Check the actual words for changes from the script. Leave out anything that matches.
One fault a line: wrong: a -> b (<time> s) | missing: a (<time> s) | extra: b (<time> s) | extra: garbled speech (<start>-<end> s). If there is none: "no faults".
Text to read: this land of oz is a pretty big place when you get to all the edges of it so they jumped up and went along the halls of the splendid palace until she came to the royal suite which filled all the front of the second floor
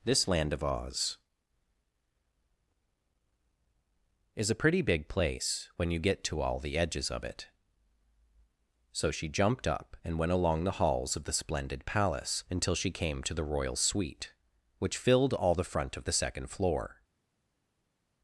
wrong: they -> she (9.1 s)